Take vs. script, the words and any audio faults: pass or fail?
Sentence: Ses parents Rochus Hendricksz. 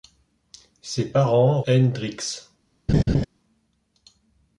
fail